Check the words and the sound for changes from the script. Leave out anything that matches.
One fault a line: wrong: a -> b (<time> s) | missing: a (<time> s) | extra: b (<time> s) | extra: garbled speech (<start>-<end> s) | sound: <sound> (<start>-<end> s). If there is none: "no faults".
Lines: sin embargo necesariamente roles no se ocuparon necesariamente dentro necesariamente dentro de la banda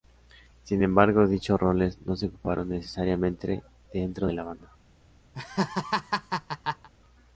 wrong: necesariamente -> dichos (1.3 s)
missing: necesariamente dentro (4.3 s)
sound: laugh (5.3-6.9 s)